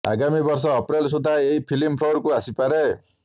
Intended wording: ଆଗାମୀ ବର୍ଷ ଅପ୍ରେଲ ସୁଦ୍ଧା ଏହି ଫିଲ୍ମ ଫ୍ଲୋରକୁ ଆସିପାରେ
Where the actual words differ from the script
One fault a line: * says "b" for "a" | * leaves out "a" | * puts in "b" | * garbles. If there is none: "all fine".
all fine